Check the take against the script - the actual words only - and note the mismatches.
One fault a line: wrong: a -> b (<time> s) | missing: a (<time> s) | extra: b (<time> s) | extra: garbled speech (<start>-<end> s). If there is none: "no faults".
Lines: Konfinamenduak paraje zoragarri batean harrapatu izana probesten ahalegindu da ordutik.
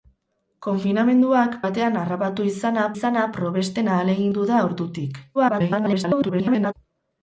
missing: paraje zoragarri (1.6 s)
extra: izana (2.9 s)
extra: garbled speech (5.3-6.7 s)